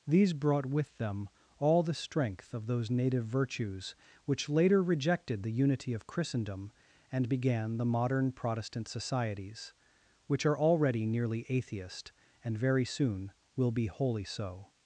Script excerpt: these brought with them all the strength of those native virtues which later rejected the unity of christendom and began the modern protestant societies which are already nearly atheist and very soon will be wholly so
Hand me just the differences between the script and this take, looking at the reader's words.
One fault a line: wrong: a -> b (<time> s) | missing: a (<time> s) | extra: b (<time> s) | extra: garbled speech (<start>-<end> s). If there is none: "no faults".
no faults